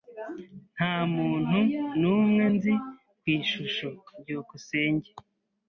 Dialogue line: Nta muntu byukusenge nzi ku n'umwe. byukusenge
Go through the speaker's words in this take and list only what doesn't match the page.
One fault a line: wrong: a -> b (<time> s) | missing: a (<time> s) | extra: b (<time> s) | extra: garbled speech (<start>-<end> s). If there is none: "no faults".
wrong: byukusenge -> n'umwe (2.0 s)
wrong: n'umwe -> ishusho (3.4 s)